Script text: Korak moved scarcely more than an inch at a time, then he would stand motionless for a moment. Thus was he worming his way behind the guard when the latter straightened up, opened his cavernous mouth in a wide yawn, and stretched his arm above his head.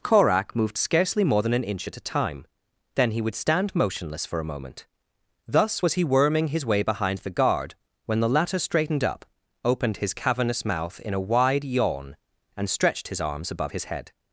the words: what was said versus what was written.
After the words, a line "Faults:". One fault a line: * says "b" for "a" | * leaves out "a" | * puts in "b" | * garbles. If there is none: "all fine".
Korak moved scarcely more than an inch at a time, then he would stand motionless for a moment. Thus was he worming his way behind the guard when the latter straightened up, opened his cavernous mouth in a wide yawn, and stretched his arms above his head.
Faults:
* says "arms" for "arm"